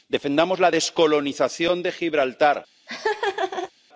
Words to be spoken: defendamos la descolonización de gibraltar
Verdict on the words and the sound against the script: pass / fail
fail